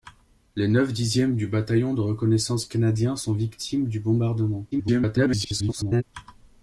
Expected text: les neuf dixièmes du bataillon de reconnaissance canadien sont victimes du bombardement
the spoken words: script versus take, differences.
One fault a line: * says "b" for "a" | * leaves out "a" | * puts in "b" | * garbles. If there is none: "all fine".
* garbles